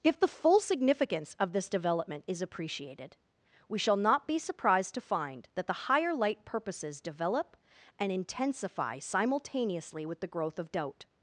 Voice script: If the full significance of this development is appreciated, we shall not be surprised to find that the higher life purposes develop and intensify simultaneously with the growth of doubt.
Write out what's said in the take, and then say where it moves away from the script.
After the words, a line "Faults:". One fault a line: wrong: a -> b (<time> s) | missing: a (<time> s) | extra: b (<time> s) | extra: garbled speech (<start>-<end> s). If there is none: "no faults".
If the full significance of this development is appreciated, we shall not be surprised to find that the higher light purposes develop and intensify simultaneously with the growth of doubt.
Faults:
wrong: life -> light (6.1 s)